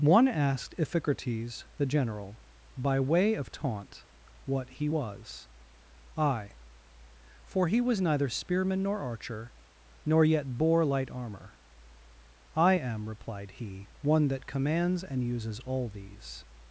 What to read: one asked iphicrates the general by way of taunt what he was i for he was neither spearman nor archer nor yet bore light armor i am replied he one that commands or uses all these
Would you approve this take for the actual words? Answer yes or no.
no